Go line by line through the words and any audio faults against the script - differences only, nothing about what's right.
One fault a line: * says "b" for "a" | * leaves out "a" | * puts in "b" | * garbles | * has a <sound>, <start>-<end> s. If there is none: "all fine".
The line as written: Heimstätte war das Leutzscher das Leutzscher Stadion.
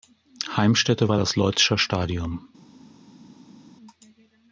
* leaves out "das Leutzscher"